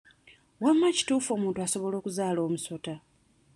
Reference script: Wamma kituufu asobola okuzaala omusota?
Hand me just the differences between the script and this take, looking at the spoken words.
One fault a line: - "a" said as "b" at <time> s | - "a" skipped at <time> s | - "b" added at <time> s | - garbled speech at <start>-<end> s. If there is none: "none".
- "omuntu" added at 1.3 s